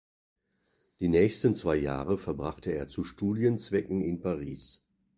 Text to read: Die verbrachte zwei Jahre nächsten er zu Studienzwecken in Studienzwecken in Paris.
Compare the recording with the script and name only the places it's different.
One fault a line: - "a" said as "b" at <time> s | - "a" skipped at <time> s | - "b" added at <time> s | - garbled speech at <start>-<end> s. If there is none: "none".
- "verbrachte" said as "nächsten" at 1.1 s
- "nächsten" said as "verbrachte" at 2.2 s
- "Studienzwecken in" skipped at 4.2 s